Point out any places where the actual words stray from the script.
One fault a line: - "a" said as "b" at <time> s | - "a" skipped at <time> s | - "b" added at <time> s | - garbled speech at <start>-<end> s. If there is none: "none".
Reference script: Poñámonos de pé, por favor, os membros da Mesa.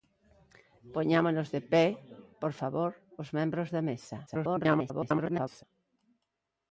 - garbled speech at 4.3-5.6 s